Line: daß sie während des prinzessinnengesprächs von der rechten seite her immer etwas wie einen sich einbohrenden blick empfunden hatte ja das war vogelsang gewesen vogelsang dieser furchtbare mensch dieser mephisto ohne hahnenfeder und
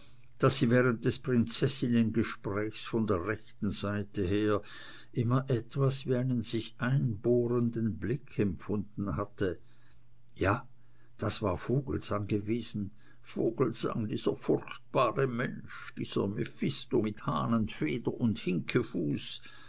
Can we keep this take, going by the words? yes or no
no